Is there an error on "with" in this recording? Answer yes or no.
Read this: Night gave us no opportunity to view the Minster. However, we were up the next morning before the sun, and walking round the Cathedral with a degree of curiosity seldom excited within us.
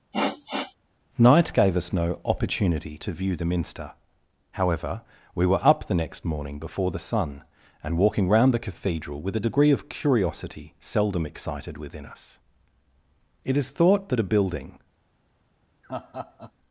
no